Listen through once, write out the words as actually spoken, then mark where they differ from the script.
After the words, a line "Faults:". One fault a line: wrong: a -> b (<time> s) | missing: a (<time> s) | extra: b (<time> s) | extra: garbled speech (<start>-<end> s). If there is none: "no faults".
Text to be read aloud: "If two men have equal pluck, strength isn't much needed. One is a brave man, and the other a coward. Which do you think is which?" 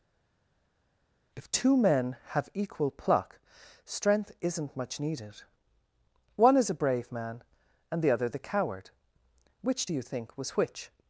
"If two men have equal pluck, strength isn't much needed. One is a brave man, and the other the coward. Which do you think was which?"
Faults:
wrong: a -> the (8.3 s)
wrong: is -> was (10.4 s)